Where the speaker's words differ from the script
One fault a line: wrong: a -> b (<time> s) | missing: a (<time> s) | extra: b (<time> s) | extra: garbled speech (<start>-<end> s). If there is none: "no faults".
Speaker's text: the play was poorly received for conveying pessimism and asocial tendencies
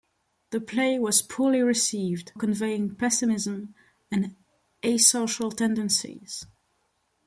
missing: for (2.3 s)